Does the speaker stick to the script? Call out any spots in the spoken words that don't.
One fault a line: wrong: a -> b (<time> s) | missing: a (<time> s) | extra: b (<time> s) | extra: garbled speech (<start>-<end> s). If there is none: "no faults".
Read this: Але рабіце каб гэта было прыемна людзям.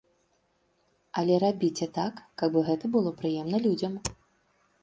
extra: так (2.0 s)